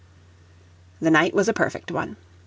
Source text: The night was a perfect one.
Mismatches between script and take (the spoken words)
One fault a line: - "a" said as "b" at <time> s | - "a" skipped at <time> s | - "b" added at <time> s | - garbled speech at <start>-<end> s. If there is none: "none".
none